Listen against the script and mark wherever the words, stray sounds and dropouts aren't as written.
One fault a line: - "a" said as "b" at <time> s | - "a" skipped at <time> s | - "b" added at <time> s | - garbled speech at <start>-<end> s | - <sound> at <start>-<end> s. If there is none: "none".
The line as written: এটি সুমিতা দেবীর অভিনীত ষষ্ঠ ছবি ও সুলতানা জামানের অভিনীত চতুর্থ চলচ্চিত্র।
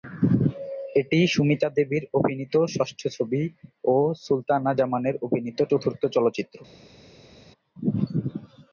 none